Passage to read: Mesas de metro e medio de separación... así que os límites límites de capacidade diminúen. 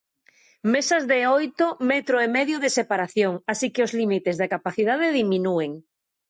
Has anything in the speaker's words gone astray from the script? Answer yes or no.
yes